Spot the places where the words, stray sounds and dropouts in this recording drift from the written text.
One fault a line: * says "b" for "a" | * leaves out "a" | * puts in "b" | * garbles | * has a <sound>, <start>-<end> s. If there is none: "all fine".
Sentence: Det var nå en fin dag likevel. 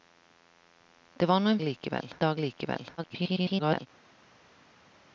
* says "likevel" for "fin"
* garbles